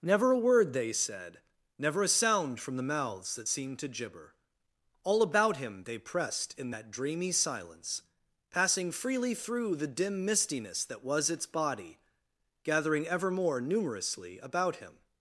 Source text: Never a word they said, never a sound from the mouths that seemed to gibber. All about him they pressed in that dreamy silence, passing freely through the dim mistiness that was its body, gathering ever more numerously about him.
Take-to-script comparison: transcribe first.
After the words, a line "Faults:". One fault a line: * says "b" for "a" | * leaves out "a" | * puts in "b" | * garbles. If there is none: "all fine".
Never a word they said, never a sound from the mouths that seemed to gibber. All about him they pressed in that dreamy silence, passing freely through the dim mistiness that was its body, gathering ever more numerously about him.
Faults:
all fine